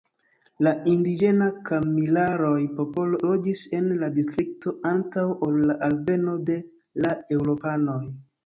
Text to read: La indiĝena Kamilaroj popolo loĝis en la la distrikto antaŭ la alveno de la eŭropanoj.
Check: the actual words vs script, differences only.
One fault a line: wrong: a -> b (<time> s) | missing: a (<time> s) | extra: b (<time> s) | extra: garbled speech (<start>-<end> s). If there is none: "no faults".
missing: la (4.1 s)
extra: ol (5.5 s)